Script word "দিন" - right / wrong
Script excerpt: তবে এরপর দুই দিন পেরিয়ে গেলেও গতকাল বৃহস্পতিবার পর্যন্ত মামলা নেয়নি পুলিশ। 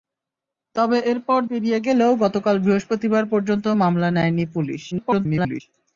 wrong